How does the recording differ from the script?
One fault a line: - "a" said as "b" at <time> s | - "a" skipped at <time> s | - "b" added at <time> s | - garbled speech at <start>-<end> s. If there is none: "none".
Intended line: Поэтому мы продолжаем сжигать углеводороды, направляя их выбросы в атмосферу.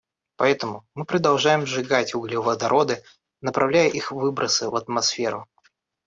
none